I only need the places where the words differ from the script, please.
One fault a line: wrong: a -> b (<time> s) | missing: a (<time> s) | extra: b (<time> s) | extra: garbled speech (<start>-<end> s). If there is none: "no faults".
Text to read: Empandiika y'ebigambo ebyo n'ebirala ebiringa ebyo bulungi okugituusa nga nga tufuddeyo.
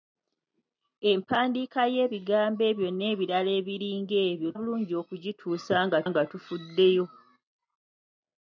no faults